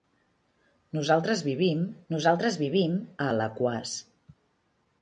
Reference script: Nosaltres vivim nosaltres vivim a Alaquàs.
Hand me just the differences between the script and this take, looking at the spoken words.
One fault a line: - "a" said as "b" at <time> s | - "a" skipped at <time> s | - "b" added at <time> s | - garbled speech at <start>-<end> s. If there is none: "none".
none